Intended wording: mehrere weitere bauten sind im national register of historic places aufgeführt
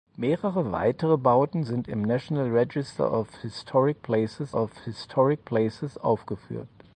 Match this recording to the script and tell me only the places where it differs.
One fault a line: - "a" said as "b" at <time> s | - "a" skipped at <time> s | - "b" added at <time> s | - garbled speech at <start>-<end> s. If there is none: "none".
- "of historic places" added at 4.5 s